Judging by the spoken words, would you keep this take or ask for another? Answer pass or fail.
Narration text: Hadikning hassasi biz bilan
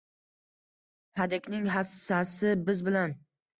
pass